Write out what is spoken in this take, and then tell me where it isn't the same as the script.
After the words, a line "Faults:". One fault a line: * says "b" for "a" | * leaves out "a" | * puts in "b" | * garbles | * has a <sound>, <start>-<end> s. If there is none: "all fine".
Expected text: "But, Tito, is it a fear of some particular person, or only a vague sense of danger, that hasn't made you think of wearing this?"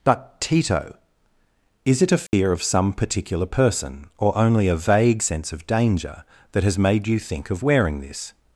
"But, Tito, is it a fear of some particular person, or only a vague sense of danger, that has made you think of wearing this?"
Faults:
* has a dropout, 2.3-2.3 s
* says "has" for "hasn't"